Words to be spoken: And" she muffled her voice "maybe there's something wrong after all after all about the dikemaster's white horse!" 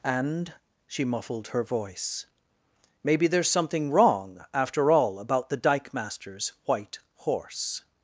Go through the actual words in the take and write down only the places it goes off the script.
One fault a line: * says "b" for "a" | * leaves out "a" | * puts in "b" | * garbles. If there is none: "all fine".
* leaves out "after all"